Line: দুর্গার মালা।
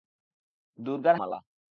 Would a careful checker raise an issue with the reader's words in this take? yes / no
no